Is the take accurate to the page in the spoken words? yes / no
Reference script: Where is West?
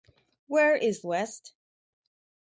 yes